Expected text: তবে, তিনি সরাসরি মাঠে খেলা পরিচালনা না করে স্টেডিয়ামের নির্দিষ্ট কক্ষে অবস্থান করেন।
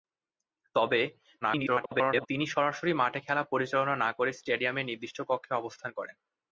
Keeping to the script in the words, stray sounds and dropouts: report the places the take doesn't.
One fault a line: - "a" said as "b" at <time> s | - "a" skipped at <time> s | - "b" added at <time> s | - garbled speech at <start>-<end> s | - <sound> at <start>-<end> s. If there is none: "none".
- garbled speech at 1.4-2.3 s